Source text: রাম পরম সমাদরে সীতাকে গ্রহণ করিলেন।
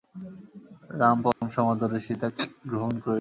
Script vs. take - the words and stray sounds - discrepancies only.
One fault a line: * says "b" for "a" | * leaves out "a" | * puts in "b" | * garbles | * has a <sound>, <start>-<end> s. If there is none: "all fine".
* has a dropout, 1.3-1.4 s